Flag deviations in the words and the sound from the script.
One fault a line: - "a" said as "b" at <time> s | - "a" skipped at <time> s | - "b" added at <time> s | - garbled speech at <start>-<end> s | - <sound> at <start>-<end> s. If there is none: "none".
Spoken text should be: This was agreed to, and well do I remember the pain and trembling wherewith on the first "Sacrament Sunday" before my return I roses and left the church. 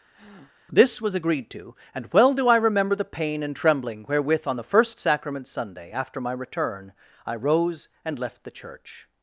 - breath at 0.1-0.5 s
- "before" said as "after" at 5.9 s
- "roses" said as "rose" at 7.4 s